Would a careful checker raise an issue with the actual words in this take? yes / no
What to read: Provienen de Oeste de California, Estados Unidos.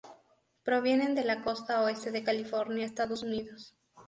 yes